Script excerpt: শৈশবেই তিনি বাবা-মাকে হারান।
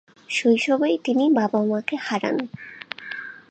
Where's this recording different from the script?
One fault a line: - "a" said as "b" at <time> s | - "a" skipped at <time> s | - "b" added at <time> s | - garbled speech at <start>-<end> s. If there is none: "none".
none